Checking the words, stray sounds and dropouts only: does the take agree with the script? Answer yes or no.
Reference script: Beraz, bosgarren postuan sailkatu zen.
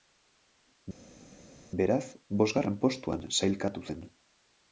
yes